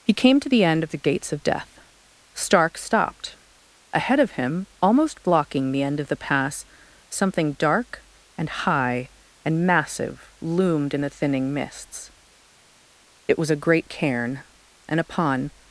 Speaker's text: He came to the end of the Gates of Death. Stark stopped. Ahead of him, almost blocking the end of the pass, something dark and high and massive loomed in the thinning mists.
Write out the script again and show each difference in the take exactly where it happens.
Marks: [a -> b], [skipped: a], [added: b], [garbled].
He came to the end of the Gates of Death. Stark stopped. Ahead of him, almost blocking the end of the pass, something dark and high and massive loomed in the thinning mists. [added: It was a great cairn and upon]